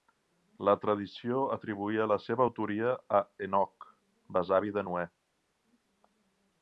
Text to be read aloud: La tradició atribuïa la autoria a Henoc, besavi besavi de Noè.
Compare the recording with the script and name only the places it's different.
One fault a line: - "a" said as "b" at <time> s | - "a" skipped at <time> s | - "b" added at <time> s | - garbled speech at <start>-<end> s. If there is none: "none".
- "seva" added at 2.2 s
- "besavi" skipped at 4.7 s